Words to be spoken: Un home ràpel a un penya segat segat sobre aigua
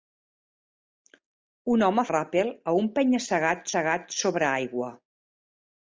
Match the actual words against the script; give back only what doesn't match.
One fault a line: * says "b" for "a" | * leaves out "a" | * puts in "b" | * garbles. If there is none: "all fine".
all fine